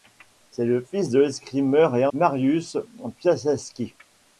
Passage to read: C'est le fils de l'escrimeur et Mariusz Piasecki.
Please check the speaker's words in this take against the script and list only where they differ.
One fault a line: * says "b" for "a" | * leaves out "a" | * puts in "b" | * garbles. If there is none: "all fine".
all fine